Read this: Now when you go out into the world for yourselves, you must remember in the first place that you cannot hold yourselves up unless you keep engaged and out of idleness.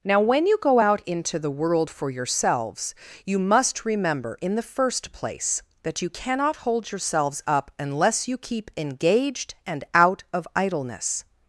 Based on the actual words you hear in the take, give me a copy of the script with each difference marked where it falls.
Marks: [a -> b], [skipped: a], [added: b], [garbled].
Now when you go out into the world for yourselves, you must remember in the first place that you cannot hold yourselves up unless you keep engaged and out of idleness.